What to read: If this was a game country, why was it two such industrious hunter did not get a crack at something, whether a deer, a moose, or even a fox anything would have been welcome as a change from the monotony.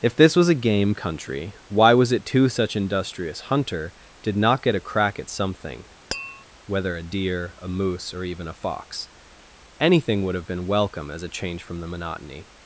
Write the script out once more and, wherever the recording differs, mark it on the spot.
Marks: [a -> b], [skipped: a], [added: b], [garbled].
If this was a game country, why was it two such industrious hunter did not get a crack at something, whether a deer, a moose, or even a fox anything would have been welcome as a change from the monotony.